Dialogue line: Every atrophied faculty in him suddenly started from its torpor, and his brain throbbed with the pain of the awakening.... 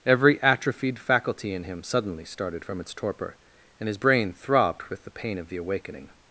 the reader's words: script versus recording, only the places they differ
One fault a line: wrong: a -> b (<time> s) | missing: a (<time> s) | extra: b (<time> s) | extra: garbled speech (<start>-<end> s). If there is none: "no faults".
no faults